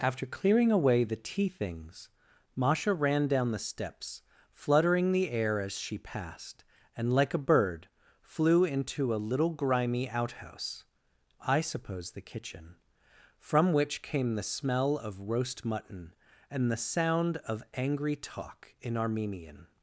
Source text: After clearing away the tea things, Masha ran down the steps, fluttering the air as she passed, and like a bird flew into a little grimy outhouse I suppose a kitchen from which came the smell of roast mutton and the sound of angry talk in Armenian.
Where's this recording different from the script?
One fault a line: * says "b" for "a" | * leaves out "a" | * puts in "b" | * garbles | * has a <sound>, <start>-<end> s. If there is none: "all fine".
* says "the" for "a"